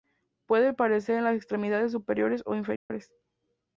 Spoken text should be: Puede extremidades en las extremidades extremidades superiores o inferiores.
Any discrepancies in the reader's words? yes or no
yes